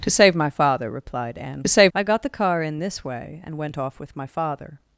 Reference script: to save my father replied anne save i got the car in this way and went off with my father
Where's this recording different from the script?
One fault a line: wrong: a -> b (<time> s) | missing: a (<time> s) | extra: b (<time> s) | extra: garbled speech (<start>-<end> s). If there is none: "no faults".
no faults